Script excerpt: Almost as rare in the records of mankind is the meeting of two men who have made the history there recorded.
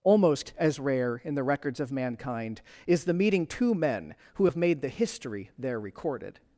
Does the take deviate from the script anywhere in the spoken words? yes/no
yes